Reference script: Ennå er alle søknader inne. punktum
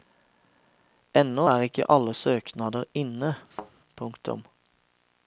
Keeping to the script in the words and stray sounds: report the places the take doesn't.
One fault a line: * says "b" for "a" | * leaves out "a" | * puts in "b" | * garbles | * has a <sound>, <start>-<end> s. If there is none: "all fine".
* puts in "ikke"
* has a thud, 3.5-3.7 s